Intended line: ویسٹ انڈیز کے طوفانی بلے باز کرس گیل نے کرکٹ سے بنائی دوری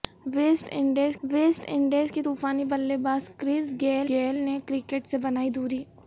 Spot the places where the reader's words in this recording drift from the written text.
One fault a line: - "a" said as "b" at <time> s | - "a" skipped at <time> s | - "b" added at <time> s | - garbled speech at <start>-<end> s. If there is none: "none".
- "ویسٹ انڈیز" added at 1.2 s
- "گیل" added at 4.1 s